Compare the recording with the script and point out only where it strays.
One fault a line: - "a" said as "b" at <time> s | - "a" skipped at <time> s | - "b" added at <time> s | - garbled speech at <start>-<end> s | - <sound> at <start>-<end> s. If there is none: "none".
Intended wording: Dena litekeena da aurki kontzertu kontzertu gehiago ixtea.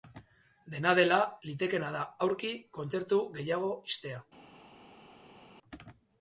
- "dela" added at 1.0 s
- "kontzertu" skipped at 3.2 s